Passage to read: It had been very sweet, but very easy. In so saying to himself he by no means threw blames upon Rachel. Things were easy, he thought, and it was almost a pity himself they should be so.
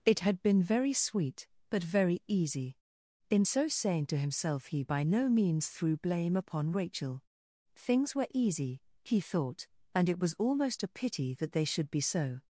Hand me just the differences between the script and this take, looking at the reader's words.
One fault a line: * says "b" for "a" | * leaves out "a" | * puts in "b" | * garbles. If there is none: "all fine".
* says "blame" for "blames"
* says "that" for "himself"